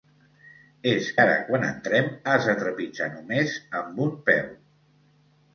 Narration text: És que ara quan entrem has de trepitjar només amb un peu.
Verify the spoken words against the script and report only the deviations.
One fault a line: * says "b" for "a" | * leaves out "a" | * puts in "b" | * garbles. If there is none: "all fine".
* leaves out "que"